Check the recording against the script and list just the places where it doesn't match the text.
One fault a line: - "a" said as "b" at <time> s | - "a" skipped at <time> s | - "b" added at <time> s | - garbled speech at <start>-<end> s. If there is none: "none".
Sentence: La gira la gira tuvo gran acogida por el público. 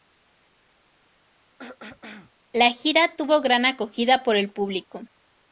- "la gira" skipped at 3.1 s